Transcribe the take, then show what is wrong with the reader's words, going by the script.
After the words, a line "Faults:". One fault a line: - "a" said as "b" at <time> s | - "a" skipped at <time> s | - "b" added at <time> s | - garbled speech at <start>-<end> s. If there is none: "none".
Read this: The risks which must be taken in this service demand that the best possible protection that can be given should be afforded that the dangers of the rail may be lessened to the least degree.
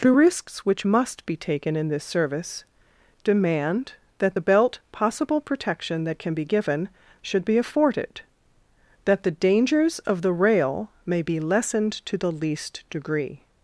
The risks which must be taken in this service demand that the belt possible protection that can be given should be afforded that the dangers of the rail may be lessened to the least degree.
Faults:
- "best" said as "belt" at 4.4 s